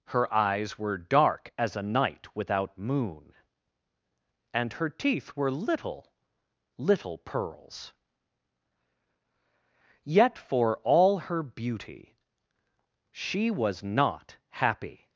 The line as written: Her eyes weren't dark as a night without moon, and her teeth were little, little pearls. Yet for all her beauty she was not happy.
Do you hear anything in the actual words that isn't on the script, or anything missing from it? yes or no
yes